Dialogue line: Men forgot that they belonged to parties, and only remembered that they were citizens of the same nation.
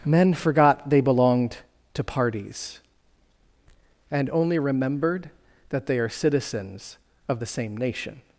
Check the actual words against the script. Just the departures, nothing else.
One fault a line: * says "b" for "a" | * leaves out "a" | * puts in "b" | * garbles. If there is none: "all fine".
* leaves out "that"
* says "are" for "were"